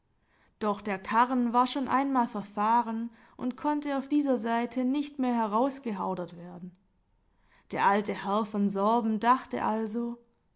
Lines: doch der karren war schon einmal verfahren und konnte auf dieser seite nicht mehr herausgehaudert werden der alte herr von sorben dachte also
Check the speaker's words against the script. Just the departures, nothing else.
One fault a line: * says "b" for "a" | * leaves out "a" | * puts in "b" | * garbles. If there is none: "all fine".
all fine